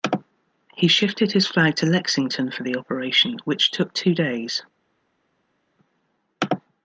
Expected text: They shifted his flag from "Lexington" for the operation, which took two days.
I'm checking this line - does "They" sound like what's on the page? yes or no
no